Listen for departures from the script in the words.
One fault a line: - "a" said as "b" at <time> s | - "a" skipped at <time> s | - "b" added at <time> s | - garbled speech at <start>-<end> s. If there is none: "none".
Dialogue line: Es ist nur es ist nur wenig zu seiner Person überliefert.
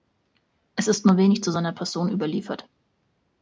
- "es ist nur" skipped at 1.2 s